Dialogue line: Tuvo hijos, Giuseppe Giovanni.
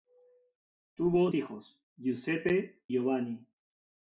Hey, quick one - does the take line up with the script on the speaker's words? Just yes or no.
yes